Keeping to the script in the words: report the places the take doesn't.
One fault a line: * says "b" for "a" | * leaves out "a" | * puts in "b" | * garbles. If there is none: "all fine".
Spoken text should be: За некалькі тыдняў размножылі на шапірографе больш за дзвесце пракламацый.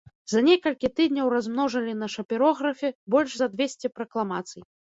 all fine